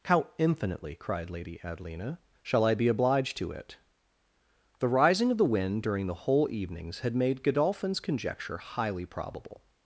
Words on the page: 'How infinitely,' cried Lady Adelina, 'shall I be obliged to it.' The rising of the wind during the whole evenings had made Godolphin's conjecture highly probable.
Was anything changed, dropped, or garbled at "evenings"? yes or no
no